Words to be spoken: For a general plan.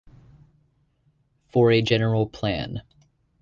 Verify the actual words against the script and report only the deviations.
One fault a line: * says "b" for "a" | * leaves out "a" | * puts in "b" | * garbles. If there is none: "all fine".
all fine